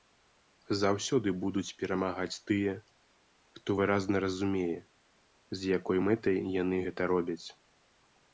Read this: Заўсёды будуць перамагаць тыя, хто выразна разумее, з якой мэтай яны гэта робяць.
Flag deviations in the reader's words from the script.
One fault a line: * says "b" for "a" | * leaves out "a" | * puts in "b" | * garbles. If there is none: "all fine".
all fine